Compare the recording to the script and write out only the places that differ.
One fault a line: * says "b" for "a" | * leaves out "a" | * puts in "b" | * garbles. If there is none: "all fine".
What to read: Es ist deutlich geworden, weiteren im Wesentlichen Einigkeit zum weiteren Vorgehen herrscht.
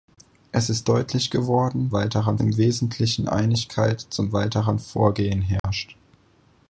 all fine